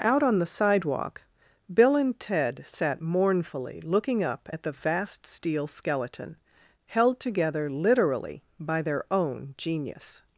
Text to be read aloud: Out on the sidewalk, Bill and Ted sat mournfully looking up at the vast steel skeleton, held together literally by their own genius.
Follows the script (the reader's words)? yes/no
yes